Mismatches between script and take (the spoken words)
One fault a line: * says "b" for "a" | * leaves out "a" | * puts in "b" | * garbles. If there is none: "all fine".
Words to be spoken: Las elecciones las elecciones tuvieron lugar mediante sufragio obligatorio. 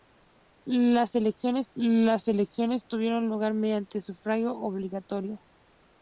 all fine